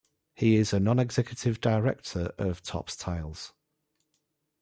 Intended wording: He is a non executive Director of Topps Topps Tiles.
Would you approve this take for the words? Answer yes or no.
no